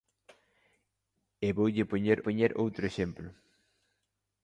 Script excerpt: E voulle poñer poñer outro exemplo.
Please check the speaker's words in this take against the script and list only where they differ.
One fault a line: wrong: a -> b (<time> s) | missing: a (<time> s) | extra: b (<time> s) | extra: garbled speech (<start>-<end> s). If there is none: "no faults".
no faults